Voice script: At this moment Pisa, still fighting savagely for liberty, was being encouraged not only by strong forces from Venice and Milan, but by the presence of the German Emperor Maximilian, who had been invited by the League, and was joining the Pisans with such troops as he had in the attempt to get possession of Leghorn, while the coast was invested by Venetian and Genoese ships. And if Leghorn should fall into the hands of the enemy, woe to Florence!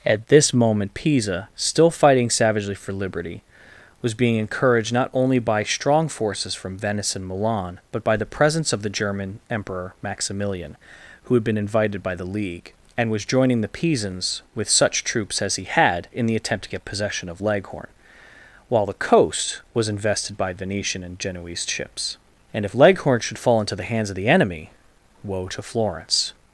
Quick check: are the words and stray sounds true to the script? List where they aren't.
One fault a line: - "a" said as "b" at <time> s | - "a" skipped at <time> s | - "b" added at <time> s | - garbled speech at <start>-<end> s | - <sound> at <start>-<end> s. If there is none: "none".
none